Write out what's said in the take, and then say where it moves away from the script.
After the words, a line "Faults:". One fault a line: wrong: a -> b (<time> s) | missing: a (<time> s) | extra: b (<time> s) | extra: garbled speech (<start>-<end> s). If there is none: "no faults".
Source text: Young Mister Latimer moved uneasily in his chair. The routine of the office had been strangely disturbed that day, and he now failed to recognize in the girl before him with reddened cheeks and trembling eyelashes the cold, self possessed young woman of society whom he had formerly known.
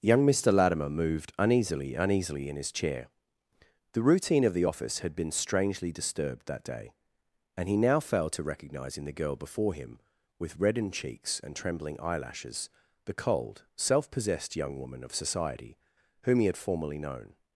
Young Mister Latimer moved uneasily uneasily in his chair. The routine of the office had been strangely disturbed that day, and he now failed to recognize in the girl before him with reddened cheeks and trembling eyelashes the cold, self possessed young woman of society whom he had formerly known.
Faults:
extra: uneasily (1.9 s)